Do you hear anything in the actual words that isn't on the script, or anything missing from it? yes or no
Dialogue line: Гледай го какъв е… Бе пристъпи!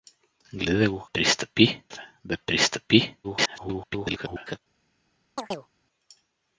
yes